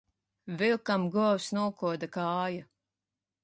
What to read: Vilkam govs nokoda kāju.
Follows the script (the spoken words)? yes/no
yes